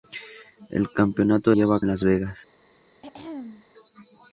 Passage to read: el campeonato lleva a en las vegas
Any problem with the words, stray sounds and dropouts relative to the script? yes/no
yes